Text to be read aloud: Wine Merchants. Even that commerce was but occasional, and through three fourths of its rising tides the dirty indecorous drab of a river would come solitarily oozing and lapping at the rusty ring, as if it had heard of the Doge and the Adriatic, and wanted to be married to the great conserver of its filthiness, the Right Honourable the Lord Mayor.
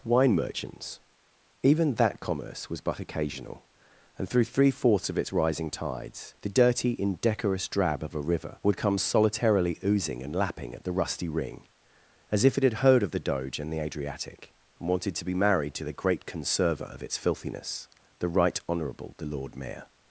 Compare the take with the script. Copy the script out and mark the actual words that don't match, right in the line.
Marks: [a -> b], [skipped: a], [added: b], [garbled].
Wine Merchants. Even that commerce was but occasional, and through three fourths of its rising tides the dirty indecorous drab of a river would come solitarily oozing and lapping at the rusty ring, as if it had heard of the Doge and the Adriatic, and wanted to be married to the great conserver of its filthiness, the Right Honourable the Lord Mayor.